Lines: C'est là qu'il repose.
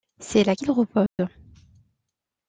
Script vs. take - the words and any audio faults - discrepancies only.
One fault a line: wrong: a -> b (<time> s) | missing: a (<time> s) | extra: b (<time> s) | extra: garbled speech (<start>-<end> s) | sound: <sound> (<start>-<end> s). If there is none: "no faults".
sound: dropout (1.1-1.2 s)